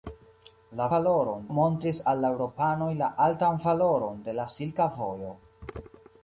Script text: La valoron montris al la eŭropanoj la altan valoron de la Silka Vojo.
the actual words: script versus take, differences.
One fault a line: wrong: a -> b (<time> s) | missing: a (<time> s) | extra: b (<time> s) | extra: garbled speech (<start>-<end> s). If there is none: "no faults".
no faults